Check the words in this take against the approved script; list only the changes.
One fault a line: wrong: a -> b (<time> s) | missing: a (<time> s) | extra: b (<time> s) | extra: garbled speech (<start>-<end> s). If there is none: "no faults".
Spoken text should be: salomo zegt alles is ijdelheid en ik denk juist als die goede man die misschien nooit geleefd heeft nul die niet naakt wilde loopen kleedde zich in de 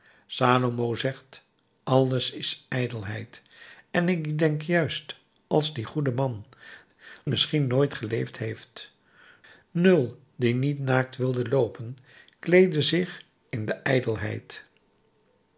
missing: die (6.4 s)